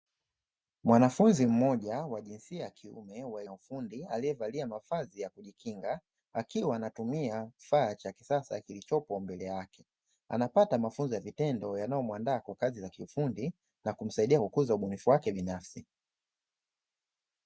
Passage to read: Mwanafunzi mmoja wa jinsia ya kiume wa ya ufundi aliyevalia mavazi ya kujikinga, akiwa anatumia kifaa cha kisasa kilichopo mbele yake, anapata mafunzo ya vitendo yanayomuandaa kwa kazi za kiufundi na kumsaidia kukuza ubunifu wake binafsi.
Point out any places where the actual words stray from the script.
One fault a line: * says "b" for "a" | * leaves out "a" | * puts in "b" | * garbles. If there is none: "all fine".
all fine